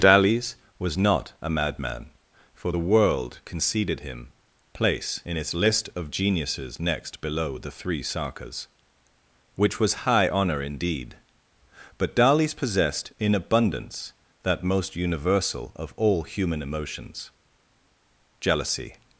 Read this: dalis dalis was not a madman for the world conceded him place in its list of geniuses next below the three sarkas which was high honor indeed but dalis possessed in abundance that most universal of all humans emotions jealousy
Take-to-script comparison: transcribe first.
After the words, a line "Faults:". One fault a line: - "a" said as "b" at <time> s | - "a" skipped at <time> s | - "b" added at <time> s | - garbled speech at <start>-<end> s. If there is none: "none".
dalis was not a madman for the world conceded him place in its list of geniuses next below the three sarkas which was high honor indeed but dalis possessed in abundance that most universal of all human emotions jealousy
Faults:
- "dalis" skipped at 0.6 s
- "humans" said as "human" at 16.2 s